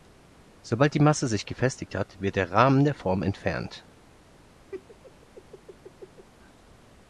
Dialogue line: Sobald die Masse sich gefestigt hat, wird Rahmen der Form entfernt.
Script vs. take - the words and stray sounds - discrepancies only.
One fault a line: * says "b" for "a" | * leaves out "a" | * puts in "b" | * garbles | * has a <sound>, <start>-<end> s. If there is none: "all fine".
* puts in "der"
* has a laugh, 4.7-6.3 s